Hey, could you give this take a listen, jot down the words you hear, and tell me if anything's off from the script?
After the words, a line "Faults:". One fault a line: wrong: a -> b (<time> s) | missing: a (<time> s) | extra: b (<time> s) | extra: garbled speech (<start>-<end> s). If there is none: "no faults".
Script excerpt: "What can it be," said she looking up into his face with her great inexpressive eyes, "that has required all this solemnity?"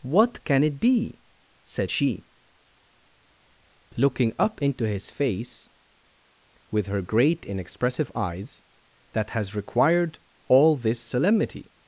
"What can it be," said she looking up into his face with her great inexpressive eyes, "that has required all this solemnity?"
Faults:
no faults